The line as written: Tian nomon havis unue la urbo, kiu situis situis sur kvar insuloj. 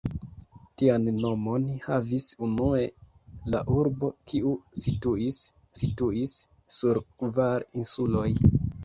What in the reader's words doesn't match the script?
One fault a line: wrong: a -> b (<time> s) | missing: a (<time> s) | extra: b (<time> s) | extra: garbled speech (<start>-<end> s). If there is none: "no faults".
no faults